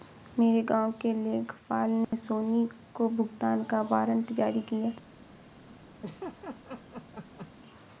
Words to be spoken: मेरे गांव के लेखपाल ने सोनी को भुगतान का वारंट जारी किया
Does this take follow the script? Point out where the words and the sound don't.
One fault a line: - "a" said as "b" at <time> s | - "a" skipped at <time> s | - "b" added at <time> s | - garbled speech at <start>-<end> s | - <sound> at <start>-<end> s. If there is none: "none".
- dropout at 2.0-2.1 s
- laugh at 6.0-7.5 s